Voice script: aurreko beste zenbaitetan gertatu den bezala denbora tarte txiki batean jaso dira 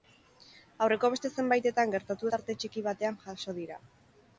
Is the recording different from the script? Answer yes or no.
yes